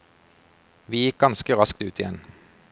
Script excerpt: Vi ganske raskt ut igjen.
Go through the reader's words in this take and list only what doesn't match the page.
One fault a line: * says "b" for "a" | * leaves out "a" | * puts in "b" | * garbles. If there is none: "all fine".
* puts in "gikk"